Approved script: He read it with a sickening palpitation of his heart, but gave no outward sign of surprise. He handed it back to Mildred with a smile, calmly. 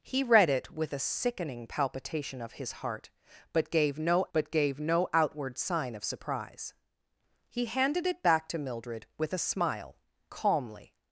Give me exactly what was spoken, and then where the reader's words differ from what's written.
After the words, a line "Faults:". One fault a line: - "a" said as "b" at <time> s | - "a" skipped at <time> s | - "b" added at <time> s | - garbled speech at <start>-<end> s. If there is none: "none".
He read it with a sickening palpitation of his heart, but gave no but gave no outward sign of surprise. He handed it back to Mildred with a smile, calmly.
Faults:
- "but gave no" added at 4.3 s